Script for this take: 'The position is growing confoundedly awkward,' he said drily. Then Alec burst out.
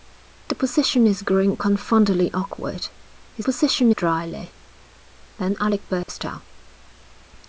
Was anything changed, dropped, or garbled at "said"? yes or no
yes